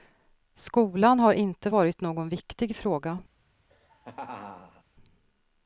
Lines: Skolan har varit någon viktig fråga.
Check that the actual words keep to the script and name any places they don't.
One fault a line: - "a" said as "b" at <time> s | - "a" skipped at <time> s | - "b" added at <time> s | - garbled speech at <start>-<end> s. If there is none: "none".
- "inte" added at 1.3 s